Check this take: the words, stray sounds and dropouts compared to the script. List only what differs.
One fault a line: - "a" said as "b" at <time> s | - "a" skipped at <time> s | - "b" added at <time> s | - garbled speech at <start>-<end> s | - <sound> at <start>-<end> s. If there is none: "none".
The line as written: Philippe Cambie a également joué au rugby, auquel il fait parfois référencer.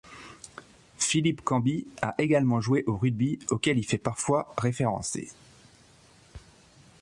none